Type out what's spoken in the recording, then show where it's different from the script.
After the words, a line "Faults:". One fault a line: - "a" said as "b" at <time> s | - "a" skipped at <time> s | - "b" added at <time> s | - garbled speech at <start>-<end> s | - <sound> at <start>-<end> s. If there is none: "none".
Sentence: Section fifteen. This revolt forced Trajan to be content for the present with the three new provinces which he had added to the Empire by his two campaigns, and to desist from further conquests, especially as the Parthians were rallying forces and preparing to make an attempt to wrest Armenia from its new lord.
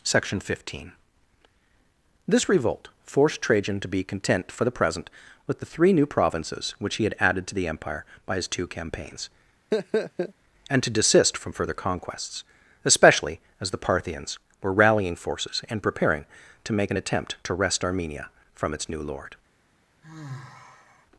Section fifteen. This revolt forced Trajan to be content for the present with the three new provinces which he had added to the Empire by his two campaigns, and to desist from further conquests, especially as the Parthians were rallying forces and preparing to make an attempt to wrest Armenia from its new lord.
Faults:
- laugh at 9.7-10.3 s
- sigh at 20.0-21.1 s